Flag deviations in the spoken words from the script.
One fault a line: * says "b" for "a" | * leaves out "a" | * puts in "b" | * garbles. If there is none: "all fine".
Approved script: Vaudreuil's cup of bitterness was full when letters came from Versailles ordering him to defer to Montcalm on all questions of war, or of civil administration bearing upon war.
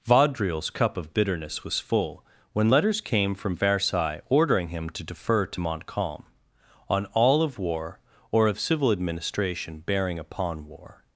* leaves out "questions"